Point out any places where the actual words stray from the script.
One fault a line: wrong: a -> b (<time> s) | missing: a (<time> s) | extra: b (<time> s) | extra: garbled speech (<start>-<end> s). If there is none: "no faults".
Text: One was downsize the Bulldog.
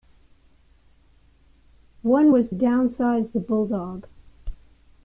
no faults